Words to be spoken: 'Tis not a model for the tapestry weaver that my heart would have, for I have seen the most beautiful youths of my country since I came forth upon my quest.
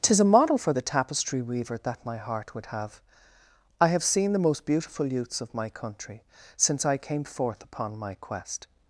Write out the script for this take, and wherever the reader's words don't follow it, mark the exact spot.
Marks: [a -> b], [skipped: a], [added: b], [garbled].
'Tis [skipped: not] a model for the tapestry weaver that my heart would have, [skipped: for] I have seen the most beautiful youths of my country since I came forth upon my quest.